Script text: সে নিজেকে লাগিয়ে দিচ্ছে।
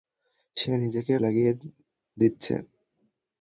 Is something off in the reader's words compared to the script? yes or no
no